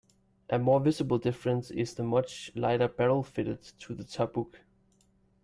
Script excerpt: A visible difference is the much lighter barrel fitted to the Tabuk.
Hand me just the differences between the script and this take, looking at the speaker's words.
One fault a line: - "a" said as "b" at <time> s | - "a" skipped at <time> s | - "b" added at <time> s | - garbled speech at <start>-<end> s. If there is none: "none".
- "more" added at 0.6 s